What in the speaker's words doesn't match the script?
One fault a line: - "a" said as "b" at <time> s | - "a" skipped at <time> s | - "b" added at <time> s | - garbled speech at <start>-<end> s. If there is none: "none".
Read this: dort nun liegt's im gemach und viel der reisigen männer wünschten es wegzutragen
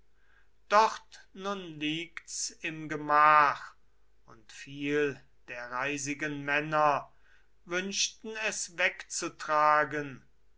none